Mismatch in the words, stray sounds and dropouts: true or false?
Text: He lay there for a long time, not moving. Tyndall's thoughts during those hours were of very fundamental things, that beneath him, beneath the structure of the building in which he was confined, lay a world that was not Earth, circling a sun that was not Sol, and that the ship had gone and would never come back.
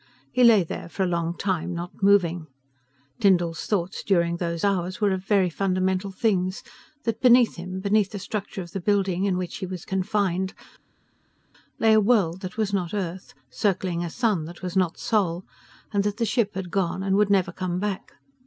false